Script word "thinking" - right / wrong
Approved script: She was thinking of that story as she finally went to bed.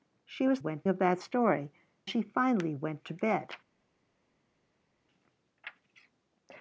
wrong